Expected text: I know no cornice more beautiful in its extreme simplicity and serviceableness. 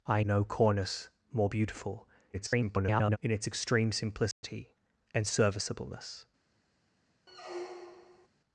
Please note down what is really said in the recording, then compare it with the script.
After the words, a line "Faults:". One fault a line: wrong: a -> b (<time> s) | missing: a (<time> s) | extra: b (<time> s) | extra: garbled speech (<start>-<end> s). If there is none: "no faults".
I no cornice more beautiful [garbled] in its extreme simplicity and serviceableness.
Faults:
missing: know (0.2 s)
extra: garbled speech (2.3-3.2 s)